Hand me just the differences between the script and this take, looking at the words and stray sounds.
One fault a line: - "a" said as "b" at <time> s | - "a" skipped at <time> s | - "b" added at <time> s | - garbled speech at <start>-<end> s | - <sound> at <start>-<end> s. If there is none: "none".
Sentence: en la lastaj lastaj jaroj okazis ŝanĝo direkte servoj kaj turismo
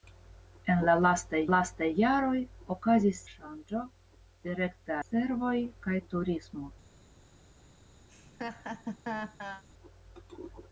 - laugh at 8.1-9.6 s